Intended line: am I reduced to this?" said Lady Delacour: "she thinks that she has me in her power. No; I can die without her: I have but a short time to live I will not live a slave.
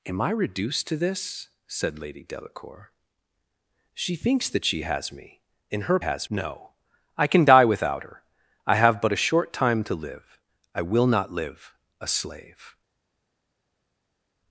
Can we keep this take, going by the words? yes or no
no